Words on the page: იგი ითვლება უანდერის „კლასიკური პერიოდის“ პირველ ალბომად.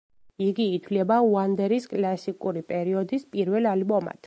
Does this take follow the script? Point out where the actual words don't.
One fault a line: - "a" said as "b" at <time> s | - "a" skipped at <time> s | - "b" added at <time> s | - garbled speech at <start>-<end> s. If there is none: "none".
none